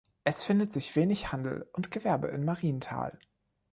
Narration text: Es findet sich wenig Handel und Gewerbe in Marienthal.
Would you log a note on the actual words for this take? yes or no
no